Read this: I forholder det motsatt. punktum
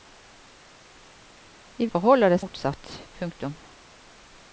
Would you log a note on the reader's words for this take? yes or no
no